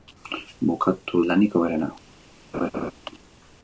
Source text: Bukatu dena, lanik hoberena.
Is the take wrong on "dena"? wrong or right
wrong